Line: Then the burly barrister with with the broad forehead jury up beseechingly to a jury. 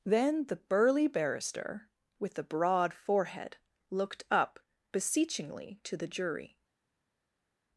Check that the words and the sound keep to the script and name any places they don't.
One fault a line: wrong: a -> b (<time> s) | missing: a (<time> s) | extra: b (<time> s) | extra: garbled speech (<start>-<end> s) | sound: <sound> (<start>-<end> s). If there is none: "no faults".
missing: with (2.3 s)
wrong: jury -> looked (3.9 s)
wrong: a -> the (6.0 s)